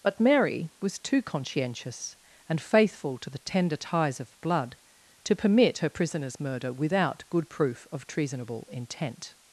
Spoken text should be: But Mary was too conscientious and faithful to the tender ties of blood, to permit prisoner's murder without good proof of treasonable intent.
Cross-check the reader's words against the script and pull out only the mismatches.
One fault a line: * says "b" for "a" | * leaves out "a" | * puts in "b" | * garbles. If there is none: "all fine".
* puts in "her"